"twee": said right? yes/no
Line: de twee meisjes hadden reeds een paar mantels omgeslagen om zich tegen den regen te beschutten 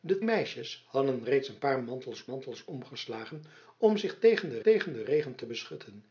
no